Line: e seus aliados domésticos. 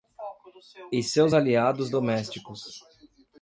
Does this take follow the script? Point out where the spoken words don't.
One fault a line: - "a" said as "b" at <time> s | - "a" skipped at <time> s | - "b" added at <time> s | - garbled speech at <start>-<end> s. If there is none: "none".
none